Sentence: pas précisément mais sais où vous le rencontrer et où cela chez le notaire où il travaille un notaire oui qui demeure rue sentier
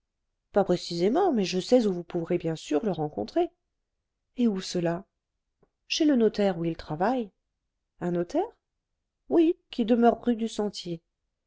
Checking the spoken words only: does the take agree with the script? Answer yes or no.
no